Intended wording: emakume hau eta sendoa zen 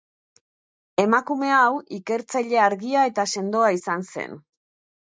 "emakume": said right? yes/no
yes